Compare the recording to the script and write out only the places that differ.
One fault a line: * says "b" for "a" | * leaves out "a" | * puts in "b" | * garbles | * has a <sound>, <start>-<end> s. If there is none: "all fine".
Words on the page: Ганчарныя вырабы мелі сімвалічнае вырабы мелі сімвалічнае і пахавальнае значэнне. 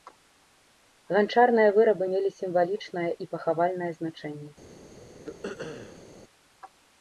* leaves out "вырабы мелі сімвалічнае"
* has a throat clearing, 5.3-6.1 s